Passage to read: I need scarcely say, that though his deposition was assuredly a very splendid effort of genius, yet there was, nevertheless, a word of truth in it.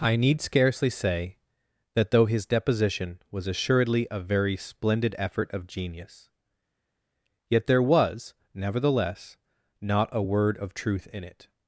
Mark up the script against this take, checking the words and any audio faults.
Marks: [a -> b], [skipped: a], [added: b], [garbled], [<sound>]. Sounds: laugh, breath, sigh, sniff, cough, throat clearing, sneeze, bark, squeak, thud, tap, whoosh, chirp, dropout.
I need scarcely say, that though his deposition was assuredly a very splendid effort of genius, yet there was, nevertheless, [added: not] a word of truth in it.